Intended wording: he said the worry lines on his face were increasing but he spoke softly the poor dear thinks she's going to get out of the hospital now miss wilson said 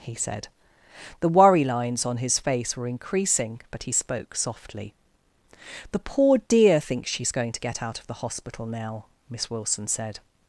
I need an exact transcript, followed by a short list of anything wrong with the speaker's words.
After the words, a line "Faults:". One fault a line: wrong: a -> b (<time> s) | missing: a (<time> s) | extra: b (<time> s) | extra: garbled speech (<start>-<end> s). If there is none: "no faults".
he said the worry lines on his face were increasing but he spoke softly the poor dear thinks she's going to get out of the hospital now miss wilson said
Faults:
no faults